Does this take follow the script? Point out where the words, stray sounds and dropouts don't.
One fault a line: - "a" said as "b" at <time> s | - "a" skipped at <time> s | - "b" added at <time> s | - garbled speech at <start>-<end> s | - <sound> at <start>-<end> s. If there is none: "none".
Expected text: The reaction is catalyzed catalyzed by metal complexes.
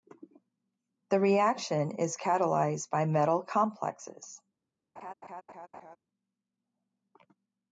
- "catalyzed" skipped at 2.9 s
- laugh at 5.0-6.0 s